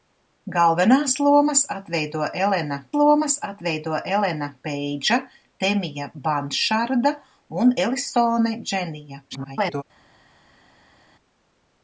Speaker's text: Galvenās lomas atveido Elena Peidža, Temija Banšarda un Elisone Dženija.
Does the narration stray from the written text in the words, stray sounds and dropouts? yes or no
yes